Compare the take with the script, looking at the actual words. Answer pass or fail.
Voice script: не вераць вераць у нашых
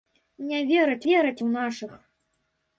pass